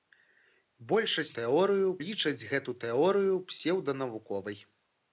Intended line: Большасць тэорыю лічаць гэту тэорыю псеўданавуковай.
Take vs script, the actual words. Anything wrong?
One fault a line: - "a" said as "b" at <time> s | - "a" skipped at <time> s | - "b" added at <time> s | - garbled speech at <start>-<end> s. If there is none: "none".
none